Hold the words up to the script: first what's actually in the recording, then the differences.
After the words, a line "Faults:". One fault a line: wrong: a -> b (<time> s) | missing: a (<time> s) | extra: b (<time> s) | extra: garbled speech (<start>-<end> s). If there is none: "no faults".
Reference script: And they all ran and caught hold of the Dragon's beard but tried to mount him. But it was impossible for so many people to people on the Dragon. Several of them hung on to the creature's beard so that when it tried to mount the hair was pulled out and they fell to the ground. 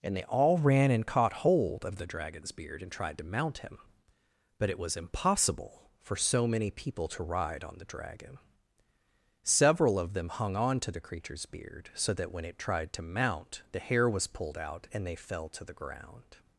And they all ran and caught hold of the Dragon's beard and tried to mount him. But it was impossible for so many people to ride on the Dragon. Several of them hung on to the creature's beard so that when it tried to mount the hair was pulled out and they fell to the ground.
Faults:
wrong: but -> and (2.8 s)
wrong: people -> ride (7.2 s)